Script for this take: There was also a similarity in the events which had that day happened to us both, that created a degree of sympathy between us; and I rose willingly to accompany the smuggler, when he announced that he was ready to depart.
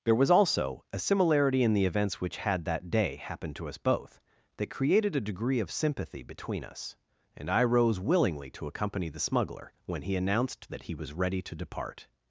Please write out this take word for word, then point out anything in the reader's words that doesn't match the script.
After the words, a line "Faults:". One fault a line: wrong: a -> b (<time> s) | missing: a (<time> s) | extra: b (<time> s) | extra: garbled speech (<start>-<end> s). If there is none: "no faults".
There was also a similarity in the events which had that day happened to us both, that created a degree of sympathy between us; and I rose willingly to accompany the smuggler, when he announced that he was ready to depart.
Faults:
no faults